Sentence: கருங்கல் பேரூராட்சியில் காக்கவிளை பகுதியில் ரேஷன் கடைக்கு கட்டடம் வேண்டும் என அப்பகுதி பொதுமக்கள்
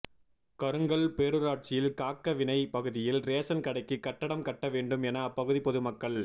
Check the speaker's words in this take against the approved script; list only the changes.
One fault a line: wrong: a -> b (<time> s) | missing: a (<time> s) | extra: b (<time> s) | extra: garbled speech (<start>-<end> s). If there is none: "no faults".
extra: கட்ட (4.5 s)